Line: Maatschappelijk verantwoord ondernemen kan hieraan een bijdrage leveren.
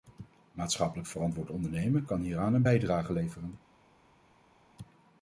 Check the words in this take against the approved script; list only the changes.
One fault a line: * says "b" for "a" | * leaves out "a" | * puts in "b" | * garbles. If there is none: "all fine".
all fine